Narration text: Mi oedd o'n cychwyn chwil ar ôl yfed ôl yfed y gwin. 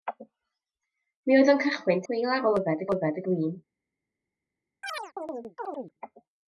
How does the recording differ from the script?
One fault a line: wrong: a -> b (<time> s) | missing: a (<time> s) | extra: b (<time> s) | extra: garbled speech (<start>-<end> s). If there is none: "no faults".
no faults